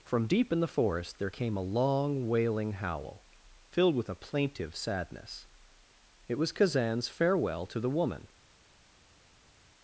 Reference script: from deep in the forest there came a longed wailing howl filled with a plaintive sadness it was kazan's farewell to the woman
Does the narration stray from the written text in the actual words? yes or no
yes